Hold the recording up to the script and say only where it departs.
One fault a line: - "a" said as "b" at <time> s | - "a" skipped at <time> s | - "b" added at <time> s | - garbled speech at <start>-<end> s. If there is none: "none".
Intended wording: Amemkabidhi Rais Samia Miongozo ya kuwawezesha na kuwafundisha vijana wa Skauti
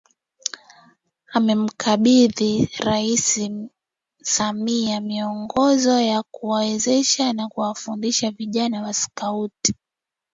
none